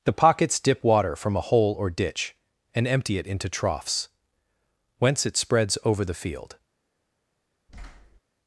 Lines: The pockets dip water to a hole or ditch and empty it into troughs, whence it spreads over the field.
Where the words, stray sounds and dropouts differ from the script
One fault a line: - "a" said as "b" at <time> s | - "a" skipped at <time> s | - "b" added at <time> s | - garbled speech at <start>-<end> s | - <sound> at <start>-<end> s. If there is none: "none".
- "to" said as "from" at 1.1 s
- thud at 7.7-8.2 s